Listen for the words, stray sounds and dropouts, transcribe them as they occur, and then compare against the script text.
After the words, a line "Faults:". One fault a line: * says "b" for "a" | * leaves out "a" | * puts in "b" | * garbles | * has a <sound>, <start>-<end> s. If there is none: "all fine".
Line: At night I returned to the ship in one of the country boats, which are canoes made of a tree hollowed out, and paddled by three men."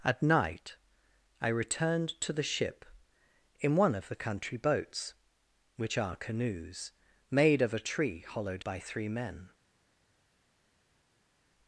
At night I returned to the ship in one of the country boats, which are canoes made of a tree hollowed by three men."
Faults:
* leaves out "out and paddled"